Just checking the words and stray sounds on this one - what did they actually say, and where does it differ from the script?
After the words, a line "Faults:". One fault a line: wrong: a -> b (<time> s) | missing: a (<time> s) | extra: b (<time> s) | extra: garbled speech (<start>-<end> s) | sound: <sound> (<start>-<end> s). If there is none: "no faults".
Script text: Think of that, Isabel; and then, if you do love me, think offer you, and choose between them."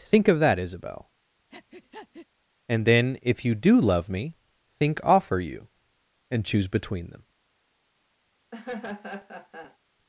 Think of that, Isabel; and then, if you do love me, think offer you, and choose between them."
Faults:
sound: breath (1.5-2.3 s)
sound: laugh (8.5-9.8 s)